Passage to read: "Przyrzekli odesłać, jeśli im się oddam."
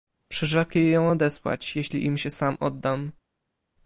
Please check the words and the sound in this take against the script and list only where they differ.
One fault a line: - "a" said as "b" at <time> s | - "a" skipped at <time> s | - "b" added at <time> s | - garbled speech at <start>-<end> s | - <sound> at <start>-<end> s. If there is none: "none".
- "ją" added at 0.9 s
- "sam" added at 2.3 s